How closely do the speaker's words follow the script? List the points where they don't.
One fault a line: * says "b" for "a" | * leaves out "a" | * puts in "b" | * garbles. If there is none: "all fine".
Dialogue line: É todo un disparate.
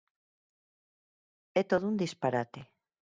all fine